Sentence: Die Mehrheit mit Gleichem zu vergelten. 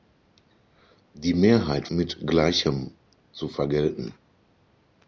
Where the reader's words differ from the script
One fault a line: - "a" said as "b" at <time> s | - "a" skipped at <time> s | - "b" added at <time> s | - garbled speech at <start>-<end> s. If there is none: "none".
none